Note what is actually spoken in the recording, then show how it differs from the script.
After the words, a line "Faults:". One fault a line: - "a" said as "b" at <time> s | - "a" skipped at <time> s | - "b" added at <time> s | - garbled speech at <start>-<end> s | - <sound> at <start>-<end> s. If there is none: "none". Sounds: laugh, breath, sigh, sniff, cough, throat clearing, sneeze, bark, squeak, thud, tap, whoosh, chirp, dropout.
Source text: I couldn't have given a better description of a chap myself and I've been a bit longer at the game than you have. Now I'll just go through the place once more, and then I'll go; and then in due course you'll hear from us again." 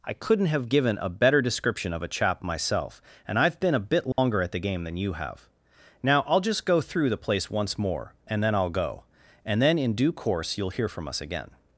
I couldn't have given a better description of a chap myself and I've been a bit longer at the game than you have. Now I'll just go through the place once more, and then I'll go; and then in due course you'll hear from us again."
Faults:
- dropout at 4.1-4.2 s